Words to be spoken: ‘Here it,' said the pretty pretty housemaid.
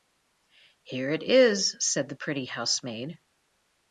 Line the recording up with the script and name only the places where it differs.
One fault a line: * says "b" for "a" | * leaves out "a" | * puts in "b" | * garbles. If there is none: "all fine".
* puts in "is"
* leaves out "pretty"